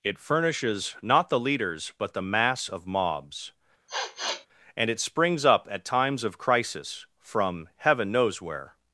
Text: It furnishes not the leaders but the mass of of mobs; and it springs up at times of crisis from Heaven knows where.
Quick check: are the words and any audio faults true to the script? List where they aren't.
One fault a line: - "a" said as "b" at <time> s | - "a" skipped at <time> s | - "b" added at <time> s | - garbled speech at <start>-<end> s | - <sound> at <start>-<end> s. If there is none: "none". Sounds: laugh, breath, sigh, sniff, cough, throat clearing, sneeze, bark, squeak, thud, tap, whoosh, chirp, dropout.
- "of" skipped at 2.9 s
- sniff at 3.9-4.5 s